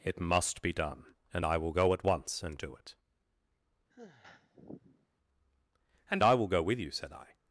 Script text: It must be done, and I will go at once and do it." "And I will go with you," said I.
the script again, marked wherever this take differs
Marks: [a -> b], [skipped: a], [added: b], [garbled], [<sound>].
It must be done, and I will go at once and do it." [sigh] "And I will go with you," said I.